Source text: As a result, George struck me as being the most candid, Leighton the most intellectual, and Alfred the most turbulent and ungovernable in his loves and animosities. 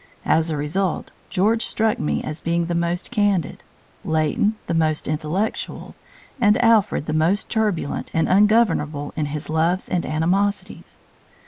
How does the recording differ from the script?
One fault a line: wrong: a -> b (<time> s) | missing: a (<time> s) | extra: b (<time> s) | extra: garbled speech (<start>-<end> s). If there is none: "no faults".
no faults